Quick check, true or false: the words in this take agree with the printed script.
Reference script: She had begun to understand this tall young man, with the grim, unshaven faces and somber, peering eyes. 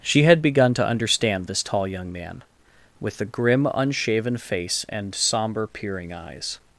false